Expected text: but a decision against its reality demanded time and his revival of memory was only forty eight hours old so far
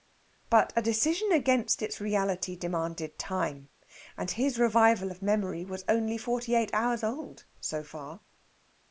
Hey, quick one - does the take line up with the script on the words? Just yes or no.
yes